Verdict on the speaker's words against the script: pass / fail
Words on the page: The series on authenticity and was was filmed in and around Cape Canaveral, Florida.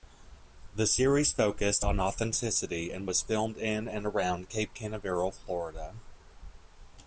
fail